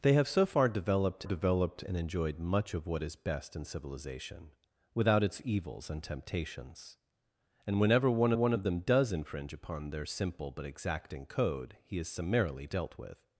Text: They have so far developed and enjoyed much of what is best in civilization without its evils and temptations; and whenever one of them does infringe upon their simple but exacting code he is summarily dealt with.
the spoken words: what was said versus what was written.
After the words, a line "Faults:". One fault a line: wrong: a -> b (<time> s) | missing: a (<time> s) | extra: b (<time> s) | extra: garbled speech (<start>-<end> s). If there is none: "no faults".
They have so far developed developed and enjoyed much of what is best in civilization without its evils and temptations; and whenever one one of them does infringe upon their simple but exacting code he is summarily dealt with.
Faults:
extra: developed (1.2 s)
extra: one (8.3 s)